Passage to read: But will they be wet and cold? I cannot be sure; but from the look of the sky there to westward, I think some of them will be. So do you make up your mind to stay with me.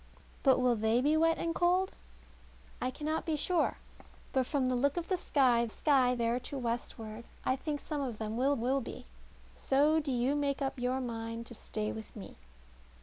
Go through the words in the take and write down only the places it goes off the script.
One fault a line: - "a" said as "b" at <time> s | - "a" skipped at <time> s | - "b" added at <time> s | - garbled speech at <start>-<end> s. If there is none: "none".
- "sky" added at 5.7 s
- "will" added at 8.6 s